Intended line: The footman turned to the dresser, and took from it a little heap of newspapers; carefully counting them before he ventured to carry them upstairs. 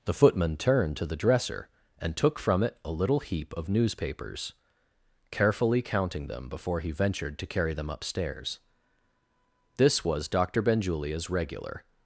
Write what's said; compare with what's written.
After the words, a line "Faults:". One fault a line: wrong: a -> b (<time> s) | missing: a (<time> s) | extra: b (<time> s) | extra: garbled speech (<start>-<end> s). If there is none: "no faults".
The footman turned to the dresser, and took from it a little heap of newspapers; carefully counting them before he ventured to carry them upstairs. This was Doctor Benjulia's regular
Faults:
extra: This was Doctor Benjulia's regular (9.8 s)